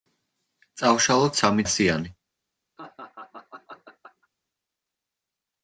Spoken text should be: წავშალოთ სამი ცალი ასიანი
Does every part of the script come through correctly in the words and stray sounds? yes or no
no